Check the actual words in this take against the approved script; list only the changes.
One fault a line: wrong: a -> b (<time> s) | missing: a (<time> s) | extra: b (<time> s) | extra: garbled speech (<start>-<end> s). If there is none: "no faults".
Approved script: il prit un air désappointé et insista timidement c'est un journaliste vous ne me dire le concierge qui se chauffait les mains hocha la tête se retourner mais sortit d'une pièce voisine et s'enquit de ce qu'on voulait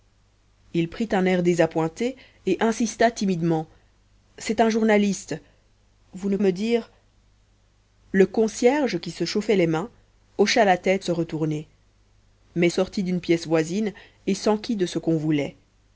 no faults